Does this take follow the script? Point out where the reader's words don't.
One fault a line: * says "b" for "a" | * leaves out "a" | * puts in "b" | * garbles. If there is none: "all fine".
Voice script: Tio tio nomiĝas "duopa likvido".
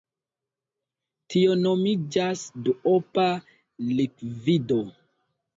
* leaves out "tio"